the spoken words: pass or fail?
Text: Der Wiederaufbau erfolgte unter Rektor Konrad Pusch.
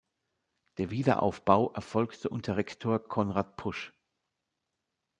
pass